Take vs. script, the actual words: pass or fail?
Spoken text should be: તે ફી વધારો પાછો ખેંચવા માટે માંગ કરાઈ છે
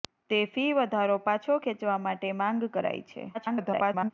fail